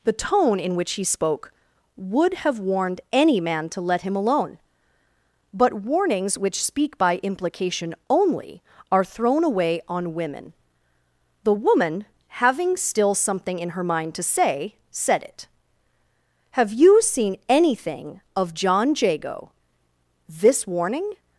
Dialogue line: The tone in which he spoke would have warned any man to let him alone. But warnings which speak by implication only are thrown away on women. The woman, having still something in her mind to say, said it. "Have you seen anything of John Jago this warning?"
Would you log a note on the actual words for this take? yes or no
no